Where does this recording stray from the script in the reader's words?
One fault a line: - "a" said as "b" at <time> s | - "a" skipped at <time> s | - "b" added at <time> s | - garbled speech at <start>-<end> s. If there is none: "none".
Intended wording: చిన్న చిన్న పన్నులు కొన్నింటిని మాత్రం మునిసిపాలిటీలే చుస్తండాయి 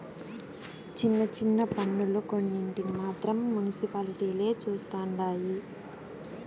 none